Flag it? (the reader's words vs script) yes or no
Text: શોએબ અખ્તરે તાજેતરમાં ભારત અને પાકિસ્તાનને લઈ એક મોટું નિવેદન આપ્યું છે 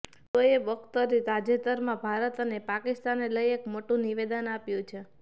no